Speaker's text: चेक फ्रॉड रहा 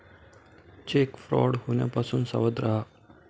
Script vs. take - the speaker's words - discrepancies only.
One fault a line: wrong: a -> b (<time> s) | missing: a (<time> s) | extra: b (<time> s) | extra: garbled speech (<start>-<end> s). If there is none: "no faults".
extra: होण्यापासून सावध (1.7 s)